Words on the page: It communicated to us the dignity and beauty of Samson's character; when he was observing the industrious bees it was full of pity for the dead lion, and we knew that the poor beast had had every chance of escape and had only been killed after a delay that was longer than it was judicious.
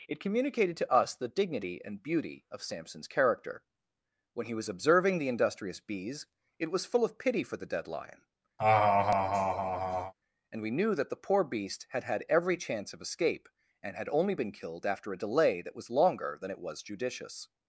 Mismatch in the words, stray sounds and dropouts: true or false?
true